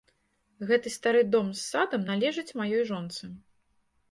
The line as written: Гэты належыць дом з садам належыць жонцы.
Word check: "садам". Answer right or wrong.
right